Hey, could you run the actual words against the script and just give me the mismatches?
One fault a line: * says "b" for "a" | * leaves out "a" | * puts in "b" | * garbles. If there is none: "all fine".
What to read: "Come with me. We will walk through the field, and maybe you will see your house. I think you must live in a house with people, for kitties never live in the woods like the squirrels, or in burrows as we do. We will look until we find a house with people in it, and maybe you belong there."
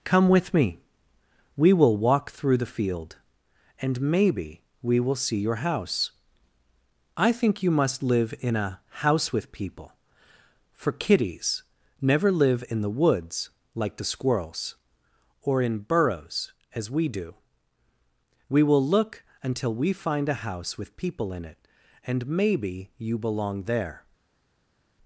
* says "we" for "you"